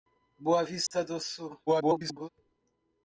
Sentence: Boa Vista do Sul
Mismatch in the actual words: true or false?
true